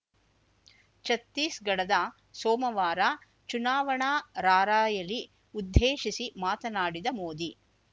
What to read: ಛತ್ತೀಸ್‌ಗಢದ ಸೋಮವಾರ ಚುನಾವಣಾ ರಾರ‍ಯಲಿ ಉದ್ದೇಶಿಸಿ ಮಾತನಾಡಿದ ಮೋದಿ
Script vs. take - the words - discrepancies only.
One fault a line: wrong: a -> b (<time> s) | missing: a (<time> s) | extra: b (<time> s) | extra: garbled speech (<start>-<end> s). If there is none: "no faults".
no faults